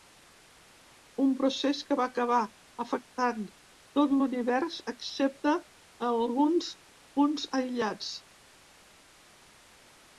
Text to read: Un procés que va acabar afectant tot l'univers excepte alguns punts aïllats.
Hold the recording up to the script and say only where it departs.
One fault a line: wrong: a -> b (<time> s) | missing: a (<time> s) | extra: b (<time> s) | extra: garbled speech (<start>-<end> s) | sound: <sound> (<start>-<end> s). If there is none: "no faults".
no faults